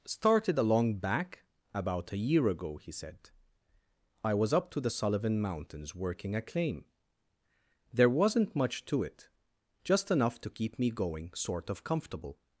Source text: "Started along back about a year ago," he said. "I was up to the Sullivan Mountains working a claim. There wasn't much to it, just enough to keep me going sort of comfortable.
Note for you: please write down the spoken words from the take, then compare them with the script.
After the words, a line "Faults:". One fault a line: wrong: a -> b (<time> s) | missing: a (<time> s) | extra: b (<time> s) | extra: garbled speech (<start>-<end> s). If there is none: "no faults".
"Started along back about a year ago," he said. "I was up to the Sullivan Mountains working a claim. There wasn't much to it, just enough to keep me going sort of comfortable.
Faults:
no faults